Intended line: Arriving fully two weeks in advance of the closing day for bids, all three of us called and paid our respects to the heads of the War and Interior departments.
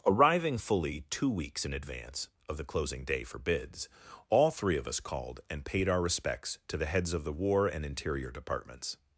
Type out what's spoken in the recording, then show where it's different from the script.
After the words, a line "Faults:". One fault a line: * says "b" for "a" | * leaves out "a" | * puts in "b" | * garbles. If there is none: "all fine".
Arriving fully two weeks in advance of the closing day for bids, all three of us called and paid our respects to the heads of the War and Interior departments.
Faults:
all fine